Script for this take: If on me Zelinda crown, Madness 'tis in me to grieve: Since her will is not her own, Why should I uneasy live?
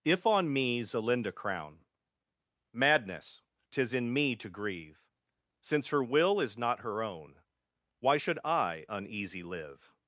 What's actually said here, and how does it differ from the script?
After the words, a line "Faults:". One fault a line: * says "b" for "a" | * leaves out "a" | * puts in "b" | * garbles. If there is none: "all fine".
If on me Zelinda crown, Madness 'tis in me to grieve: Since her will is not her own, Why should I uneasy live?
Faults:
all fine